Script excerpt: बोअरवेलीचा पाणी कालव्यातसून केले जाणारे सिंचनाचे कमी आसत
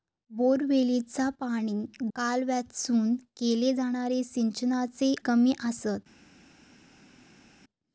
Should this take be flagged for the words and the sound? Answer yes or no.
no